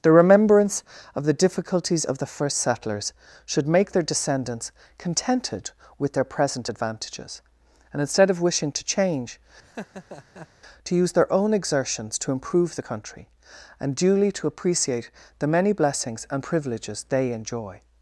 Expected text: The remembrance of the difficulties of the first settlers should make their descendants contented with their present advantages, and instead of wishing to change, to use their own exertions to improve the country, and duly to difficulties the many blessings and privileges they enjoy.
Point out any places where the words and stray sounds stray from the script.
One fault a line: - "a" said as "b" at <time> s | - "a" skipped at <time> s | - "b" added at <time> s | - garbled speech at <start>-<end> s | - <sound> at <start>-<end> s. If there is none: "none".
- laugh at 9.6-10.5 s
- "difficulties" said as "appreciate" at 14.5 s